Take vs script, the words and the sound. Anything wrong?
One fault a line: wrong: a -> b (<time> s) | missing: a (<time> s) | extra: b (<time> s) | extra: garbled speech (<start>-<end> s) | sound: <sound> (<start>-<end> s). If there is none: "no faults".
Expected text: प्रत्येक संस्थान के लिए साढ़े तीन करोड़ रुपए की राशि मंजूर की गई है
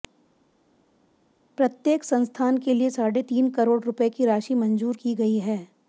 no faults